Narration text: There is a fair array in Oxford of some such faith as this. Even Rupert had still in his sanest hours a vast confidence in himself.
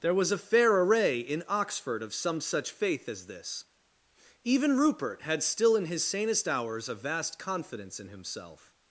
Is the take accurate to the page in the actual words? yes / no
no